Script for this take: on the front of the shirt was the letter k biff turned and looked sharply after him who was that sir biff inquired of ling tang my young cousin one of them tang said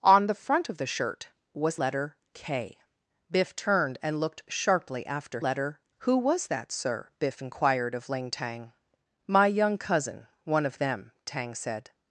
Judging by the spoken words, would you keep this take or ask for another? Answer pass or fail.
fail